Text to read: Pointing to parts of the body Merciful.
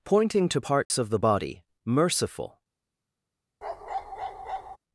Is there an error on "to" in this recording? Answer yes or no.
no